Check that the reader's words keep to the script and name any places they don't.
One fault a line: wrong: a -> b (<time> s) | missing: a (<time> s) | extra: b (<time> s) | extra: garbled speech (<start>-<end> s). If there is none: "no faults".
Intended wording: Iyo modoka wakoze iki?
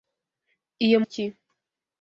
missing: modoka wakoze (1.0 s)